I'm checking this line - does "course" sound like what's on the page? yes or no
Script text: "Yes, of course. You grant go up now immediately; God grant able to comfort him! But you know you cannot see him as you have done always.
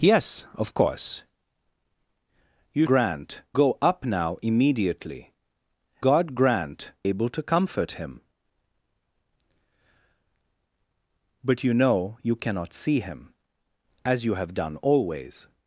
yes